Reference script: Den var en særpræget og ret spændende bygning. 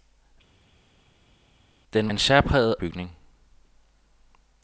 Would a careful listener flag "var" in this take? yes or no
yes